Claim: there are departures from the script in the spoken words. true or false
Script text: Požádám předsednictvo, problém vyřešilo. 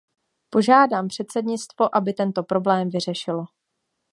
true